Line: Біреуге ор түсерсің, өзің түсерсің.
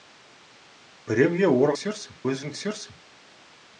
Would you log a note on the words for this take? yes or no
no